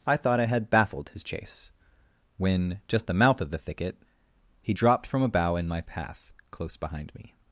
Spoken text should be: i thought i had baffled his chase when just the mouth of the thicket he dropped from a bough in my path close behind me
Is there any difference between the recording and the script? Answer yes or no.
no